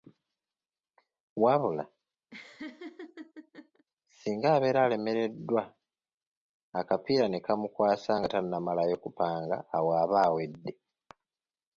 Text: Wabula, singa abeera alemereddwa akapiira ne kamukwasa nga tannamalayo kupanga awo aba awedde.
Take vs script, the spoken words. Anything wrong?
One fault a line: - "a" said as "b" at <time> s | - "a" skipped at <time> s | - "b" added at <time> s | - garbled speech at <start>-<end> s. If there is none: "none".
none